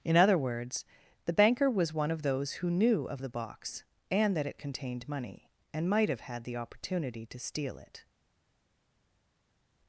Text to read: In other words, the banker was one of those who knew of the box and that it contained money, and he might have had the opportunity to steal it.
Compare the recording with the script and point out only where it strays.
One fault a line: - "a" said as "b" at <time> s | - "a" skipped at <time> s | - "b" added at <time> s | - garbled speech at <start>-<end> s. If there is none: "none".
- "he" skipped at 5.9 s